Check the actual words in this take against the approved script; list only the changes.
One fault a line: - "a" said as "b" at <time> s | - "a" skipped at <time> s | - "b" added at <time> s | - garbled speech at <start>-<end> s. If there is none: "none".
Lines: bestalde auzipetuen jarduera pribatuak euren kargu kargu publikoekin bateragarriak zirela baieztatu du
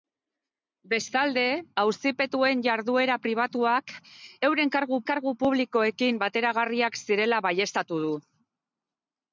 none